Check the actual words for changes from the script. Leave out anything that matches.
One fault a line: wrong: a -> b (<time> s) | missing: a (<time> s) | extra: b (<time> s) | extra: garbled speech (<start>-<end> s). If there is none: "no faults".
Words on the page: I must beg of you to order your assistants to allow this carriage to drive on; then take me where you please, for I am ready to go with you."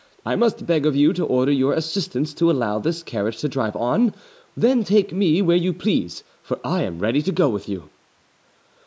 no faults